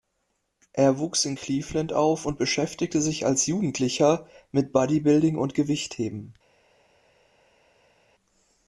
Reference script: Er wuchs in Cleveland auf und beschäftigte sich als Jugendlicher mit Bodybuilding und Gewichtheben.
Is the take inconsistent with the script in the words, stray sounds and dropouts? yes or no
no